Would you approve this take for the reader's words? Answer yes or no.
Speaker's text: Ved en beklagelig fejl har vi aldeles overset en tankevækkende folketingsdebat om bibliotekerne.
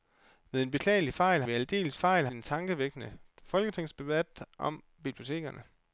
no